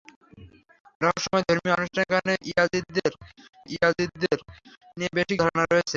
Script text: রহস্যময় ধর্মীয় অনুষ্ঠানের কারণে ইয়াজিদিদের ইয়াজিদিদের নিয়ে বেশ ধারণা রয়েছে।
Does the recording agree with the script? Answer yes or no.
yes